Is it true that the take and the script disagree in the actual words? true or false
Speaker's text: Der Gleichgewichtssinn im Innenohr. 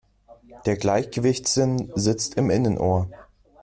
true